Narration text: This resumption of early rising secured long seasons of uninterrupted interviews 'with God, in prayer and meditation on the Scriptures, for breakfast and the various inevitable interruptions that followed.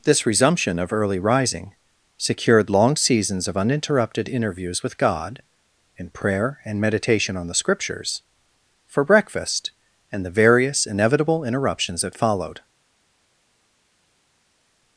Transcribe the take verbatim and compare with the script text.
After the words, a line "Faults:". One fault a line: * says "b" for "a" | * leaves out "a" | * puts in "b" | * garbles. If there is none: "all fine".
This resumption of early rising secured long seasons of uninterrupted interviews 'with God, in prayer and meditation on the Scriptures, for breakfast and the various inevitable interruptions that followed.
Faults:
all fine